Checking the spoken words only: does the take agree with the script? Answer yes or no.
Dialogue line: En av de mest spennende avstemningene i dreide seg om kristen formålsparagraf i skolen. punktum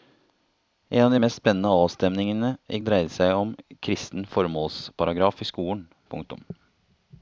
yes